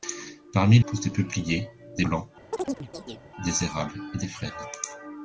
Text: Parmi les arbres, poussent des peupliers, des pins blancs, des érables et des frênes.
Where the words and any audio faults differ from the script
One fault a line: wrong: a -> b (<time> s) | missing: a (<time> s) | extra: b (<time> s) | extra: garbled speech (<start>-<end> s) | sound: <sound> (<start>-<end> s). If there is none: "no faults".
missing: les arbres (0.8 s)
missing: pins (2.0 s)
sound: chirp (2.5-3.2 s)